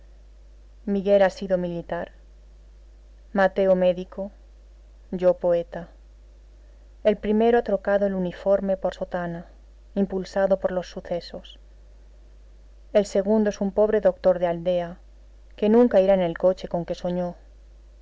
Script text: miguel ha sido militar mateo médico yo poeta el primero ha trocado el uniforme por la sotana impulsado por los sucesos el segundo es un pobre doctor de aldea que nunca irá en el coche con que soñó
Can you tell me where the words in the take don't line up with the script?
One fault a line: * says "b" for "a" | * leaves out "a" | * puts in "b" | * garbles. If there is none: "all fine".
* leaves out "la"